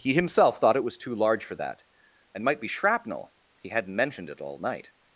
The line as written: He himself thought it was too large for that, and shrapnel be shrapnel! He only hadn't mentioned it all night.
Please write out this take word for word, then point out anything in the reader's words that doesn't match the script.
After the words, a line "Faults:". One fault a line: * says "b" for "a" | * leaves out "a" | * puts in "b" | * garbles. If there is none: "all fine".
He himself thought it was too large for that, and might be shrapnel! He hadn't mentioned it all night.
Faults:
* says "might" for "shrapnel"
* leaves out "only"